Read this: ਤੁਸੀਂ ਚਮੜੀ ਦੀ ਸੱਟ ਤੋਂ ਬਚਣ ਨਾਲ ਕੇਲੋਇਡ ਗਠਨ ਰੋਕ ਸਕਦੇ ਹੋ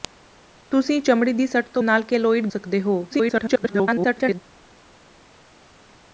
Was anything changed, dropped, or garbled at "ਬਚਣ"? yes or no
yes